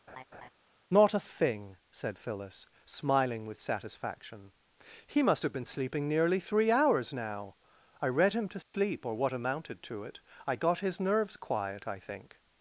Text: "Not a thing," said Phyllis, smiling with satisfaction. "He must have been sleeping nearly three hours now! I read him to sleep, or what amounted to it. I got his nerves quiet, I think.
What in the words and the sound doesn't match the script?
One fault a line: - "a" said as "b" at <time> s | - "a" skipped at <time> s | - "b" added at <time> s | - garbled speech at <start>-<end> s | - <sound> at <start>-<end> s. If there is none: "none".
- laugh at 0.1-0.5 s
- dropout at 8.6-8.7 s